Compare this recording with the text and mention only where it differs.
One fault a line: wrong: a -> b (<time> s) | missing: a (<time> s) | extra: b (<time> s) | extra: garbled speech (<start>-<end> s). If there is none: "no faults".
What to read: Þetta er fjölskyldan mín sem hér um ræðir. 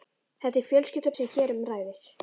missing: mín (1.1 s)